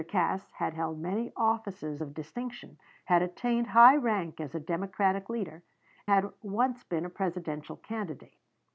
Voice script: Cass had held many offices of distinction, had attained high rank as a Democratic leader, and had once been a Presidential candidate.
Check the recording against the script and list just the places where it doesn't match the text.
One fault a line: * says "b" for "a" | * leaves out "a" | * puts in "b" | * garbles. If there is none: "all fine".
* leaves out "and"